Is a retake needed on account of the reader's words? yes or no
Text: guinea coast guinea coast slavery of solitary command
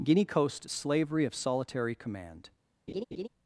yes